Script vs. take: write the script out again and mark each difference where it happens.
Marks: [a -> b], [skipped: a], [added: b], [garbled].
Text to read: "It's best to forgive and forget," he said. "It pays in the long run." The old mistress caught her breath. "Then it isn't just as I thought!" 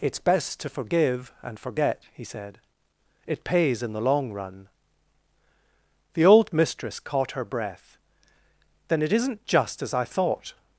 "It's best to forgive and forget," he said. "It pays in the long run." The old mistress caught her breath. "Then it isn't just as I thought!"